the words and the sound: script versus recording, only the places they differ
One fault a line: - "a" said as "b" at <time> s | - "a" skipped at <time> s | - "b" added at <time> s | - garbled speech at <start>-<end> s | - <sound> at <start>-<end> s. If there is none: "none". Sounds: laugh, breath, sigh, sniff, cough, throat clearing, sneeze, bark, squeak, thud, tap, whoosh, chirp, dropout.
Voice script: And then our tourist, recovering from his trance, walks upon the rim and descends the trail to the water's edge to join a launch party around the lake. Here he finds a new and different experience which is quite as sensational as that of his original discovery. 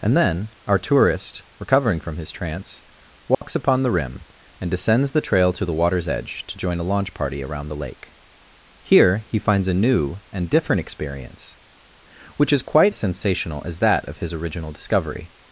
- dropout at 3.3-3.4 s
- "as" skipped at 12.9 s